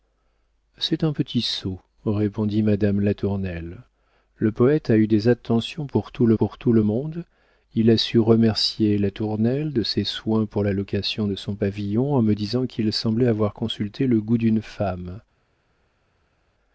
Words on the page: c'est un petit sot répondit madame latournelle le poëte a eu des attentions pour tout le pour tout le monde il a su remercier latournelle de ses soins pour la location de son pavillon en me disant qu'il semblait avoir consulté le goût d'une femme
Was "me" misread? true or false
false